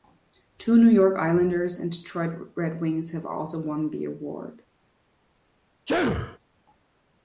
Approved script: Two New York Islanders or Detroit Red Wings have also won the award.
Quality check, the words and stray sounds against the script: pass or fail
fail